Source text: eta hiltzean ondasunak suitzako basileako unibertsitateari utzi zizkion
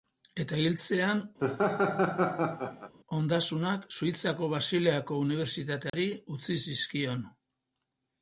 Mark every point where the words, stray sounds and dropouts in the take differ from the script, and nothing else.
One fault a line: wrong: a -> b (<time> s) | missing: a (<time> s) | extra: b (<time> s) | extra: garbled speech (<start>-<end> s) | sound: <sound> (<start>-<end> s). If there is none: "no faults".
sound: laugh (1.4-2.9 s)
sound: dropout (5.9-5.9 s)